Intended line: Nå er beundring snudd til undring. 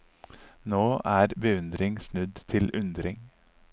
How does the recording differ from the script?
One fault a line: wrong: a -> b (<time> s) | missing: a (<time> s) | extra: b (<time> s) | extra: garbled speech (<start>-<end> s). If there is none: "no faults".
no faults